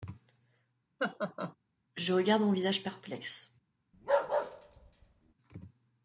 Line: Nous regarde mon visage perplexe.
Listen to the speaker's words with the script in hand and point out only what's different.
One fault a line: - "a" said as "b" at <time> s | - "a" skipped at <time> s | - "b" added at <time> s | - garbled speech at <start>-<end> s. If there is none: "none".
- "Nous" said as "Je" at 2.0 s